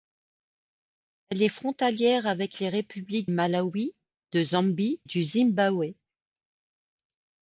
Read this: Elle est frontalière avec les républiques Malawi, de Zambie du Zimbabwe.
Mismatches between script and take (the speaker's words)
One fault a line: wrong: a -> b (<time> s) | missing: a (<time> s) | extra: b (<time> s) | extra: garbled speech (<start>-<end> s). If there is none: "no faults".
no faults